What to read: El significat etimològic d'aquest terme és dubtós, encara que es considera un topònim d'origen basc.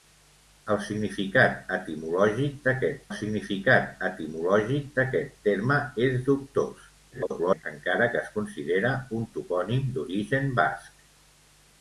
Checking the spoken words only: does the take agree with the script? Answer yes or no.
no